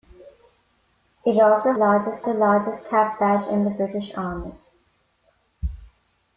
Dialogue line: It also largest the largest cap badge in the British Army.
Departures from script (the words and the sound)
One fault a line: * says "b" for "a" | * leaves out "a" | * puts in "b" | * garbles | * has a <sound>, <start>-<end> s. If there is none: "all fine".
all fine